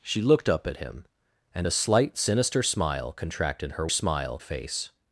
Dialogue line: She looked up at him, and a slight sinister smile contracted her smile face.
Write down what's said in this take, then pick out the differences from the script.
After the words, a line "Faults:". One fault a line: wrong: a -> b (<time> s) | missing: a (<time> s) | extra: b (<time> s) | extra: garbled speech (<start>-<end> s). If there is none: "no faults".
She looked up at him, and a slight sinister smile contracted her smile face.
Faults:
no faults